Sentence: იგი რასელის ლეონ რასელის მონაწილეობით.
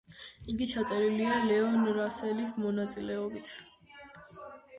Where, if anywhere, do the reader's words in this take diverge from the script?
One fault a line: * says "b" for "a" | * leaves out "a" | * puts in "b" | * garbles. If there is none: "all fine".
* says "ჩაწერილია" for "რასელის"